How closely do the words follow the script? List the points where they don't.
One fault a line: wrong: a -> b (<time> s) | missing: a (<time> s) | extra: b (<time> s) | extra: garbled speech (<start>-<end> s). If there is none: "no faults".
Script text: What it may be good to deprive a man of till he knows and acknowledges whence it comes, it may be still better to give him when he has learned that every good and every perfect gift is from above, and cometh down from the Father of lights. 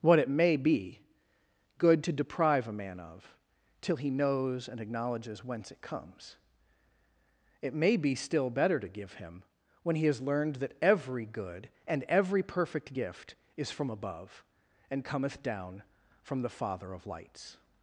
no faults